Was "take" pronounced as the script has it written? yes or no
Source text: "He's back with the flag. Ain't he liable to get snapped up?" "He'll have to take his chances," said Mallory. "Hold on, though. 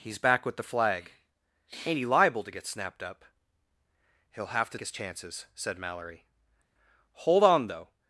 no